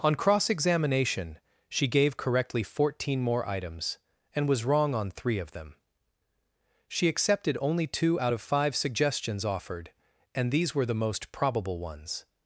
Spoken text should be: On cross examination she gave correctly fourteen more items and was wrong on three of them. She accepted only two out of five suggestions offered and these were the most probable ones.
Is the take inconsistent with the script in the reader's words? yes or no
no